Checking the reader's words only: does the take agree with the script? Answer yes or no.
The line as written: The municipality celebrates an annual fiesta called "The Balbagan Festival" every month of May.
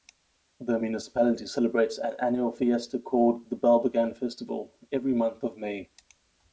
yes